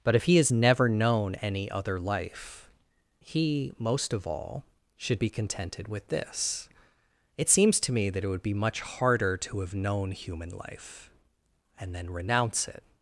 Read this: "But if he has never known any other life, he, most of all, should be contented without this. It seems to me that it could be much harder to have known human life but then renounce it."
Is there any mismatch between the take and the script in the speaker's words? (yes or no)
yes